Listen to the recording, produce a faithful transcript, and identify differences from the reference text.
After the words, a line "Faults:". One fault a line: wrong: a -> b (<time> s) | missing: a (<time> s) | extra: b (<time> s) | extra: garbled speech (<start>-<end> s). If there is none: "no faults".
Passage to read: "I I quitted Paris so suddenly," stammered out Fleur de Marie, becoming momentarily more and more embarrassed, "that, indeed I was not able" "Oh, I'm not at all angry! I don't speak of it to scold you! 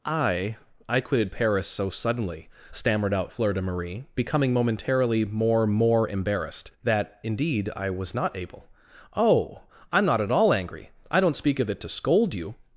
"I I quitted Paris so suddenly," stammered out Fleur de Marie, becoming momentarily more more embarrassed, "that, indeed I was not able" "Oh, I'm not at all angry! I don't speak of it to scold you!
Faults:
missing: and (5.7 s)